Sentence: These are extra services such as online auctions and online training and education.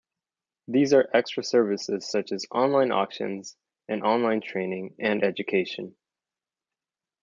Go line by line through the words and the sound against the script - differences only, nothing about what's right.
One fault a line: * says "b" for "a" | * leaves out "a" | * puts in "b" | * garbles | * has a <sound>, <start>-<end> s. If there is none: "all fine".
all fine